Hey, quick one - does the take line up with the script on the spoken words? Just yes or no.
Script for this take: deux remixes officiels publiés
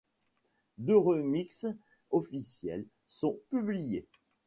no